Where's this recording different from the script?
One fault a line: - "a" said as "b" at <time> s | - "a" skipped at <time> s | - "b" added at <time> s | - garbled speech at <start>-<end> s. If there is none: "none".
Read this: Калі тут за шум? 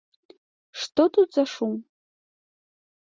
- "Калі" said as "Што" at 0.8 s